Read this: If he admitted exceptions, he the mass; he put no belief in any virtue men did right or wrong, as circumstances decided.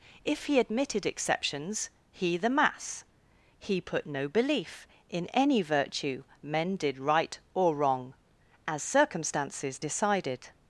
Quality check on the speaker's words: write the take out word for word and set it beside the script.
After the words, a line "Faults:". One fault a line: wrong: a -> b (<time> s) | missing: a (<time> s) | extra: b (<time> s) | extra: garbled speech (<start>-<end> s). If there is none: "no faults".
If he admitted exceptions, he the mass; he put no belief in any virtue men did right or wrong, as circumstances decided.
Faults:
no faults